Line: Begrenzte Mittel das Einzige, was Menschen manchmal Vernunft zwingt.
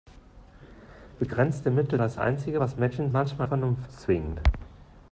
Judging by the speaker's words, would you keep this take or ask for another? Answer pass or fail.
pass